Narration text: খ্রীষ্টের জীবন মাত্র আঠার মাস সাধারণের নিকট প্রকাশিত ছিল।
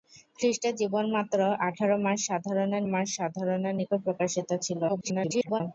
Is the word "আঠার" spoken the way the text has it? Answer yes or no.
yes